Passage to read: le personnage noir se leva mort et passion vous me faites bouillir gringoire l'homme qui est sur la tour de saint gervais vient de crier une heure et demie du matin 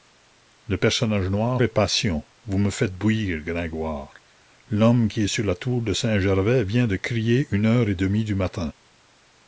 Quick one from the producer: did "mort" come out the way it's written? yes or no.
no